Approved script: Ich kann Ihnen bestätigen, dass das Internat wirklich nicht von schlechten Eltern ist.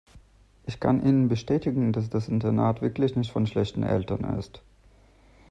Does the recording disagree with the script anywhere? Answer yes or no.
no